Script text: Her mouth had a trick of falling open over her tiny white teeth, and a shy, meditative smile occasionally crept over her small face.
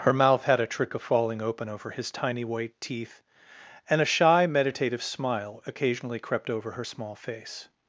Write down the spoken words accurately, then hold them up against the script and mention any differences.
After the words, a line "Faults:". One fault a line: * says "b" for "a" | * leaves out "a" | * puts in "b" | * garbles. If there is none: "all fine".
Her mouth had a trick of falling open over his tiny white teeth, and a shy, meditative smile occasionally crept over her small face.
Faults:
* says "his" for "her"